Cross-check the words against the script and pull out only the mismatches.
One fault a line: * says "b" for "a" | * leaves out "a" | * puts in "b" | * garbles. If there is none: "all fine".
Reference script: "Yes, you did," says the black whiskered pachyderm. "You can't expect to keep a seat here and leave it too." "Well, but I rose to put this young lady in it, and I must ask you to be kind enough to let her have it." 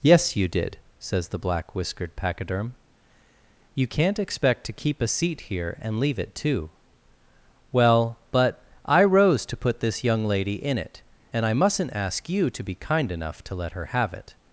* says "mustn't" for "must"